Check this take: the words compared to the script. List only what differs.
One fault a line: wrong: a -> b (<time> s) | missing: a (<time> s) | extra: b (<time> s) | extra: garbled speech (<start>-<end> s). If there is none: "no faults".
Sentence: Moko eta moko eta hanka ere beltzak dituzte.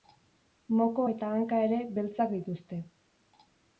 missing: moko eta (1.3 s)